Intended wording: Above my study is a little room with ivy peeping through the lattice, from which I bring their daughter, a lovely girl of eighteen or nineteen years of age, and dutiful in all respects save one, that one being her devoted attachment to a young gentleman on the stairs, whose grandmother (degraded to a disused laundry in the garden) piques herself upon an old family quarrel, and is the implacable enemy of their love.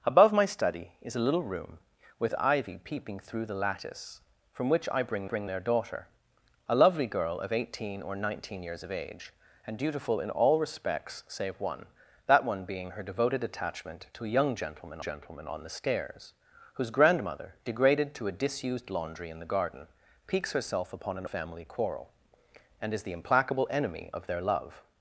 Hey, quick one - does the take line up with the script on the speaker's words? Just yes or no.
no